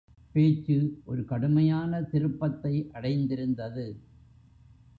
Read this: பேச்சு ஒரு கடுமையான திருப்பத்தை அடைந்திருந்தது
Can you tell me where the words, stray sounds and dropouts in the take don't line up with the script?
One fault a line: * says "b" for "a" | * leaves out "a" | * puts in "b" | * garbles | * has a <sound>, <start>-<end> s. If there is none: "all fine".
all fine